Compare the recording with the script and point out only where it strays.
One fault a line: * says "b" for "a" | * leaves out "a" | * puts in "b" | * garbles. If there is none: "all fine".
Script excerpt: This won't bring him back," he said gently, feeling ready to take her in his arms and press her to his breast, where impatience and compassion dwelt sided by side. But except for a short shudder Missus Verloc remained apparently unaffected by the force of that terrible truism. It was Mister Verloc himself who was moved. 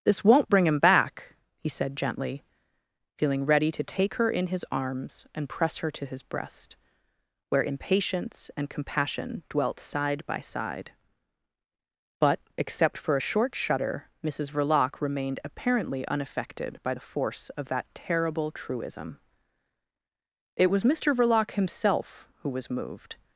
* says "side" for "sided"